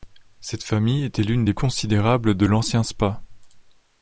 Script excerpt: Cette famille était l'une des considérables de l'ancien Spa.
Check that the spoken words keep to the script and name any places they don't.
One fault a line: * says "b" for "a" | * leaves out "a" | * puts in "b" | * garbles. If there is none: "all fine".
all fine